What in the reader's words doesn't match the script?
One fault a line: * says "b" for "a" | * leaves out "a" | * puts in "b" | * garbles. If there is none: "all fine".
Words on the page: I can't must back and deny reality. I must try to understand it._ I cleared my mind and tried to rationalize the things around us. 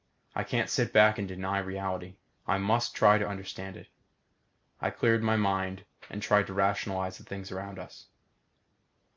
* says "sit" for "must"